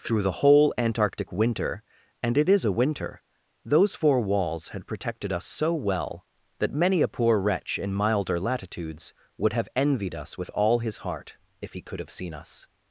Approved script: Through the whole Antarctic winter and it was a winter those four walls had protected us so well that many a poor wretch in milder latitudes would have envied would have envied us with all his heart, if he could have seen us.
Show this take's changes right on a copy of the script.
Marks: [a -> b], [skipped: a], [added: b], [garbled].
Through the whole Antarctic winter and it [was -> is] a winter those four walls had protected us so well that many a poor wretch in milder latitudes would have envied [skipped: would have envied] us with all his heart, if he could have seen us.